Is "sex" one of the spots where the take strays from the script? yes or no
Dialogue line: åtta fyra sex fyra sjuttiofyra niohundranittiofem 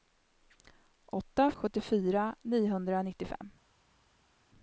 yes